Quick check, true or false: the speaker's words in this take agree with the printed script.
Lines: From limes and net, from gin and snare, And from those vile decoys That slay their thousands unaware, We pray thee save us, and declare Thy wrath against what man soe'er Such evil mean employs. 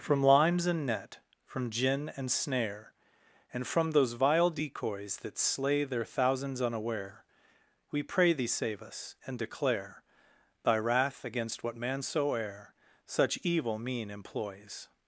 true